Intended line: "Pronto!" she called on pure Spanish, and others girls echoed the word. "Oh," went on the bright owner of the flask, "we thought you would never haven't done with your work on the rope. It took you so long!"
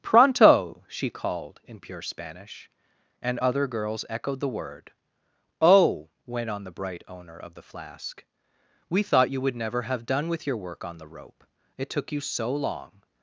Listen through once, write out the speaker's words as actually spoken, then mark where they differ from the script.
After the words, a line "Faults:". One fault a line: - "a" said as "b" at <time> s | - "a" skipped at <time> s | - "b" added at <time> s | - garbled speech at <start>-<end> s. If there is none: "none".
"Pronto!" she called in pure Spanish, and other girls echoed the word. "Oh," went on the bright owner of the flask, "we thought you would never have done with your work on the rope. It took you so long!"
Faults:
- "on" said as "in" at 1.6 s
- "others" said as "other" at 3.4 s
- "haven't" said as "have" at 9.8 s